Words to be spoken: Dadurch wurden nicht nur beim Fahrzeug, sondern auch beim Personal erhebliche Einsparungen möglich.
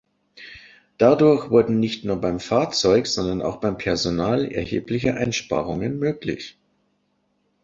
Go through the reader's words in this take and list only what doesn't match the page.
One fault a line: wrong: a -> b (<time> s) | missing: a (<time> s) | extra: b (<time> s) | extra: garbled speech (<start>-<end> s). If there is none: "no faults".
no faults